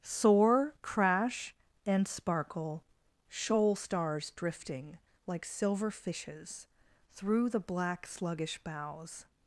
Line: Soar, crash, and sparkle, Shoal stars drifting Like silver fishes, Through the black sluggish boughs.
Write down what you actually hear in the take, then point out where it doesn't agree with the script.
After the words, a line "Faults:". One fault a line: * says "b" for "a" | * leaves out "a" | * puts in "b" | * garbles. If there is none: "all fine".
Soar, crash, and sparkle, Shoal stars drifting Like silver fishes, Through the black sluggish boughs.
Faults:
all fine